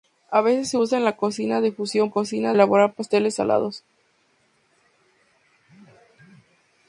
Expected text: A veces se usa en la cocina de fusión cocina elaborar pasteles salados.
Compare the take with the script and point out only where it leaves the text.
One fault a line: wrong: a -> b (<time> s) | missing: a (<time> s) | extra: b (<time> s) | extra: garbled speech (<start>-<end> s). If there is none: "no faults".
no faults